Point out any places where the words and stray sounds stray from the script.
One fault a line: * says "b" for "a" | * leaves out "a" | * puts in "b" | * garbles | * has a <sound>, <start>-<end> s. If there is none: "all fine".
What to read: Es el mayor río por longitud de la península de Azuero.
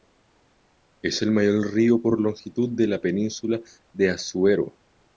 all fine